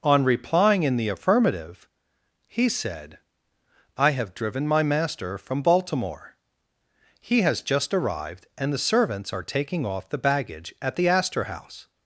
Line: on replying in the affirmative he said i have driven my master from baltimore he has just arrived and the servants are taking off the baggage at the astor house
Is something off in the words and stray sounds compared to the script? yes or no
no